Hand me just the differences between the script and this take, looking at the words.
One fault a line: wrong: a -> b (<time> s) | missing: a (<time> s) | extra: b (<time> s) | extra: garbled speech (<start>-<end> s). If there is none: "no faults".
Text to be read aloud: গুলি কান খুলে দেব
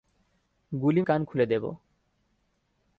no faults